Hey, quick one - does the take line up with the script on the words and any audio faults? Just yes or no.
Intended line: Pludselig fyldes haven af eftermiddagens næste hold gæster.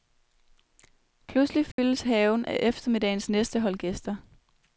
no